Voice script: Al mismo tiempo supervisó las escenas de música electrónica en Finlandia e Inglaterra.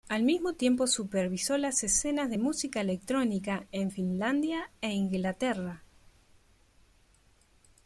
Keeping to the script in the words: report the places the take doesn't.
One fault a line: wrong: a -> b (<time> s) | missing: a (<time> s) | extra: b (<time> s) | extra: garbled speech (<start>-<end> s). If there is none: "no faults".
no faults